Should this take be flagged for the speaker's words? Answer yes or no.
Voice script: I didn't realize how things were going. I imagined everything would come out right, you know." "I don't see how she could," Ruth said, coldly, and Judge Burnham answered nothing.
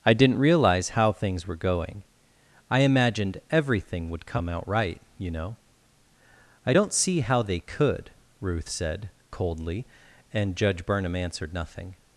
yes